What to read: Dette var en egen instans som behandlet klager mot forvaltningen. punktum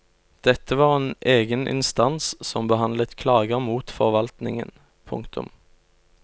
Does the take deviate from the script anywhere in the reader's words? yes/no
no